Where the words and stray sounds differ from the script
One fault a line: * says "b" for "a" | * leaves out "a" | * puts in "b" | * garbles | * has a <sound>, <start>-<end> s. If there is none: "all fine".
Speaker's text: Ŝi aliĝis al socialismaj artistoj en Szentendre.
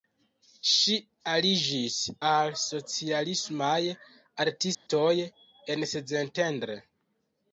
* has a dropout, 4.7-4.9 s